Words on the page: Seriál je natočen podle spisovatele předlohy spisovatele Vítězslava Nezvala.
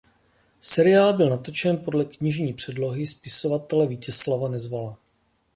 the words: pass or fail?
fail